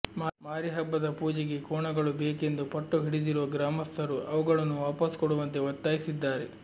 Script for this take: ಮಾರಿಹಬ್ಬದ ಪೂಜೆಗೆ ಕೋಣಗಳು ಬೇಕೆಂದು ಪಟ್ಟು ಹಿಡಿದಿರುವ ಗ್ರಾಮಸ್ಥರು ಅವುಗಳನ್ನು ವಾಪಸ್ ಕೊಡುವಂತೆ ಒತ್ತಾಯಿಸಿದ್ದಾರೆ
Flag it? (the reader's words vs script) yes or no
no